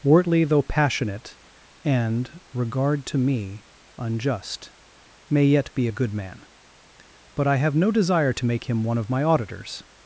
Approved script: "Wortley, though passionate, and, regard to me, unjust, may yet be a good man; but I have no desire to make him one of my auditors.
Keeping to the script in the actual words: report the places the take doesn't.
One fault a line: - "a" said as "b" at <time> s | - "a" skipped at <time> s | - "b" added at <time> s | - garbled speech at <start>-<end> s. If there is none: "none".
none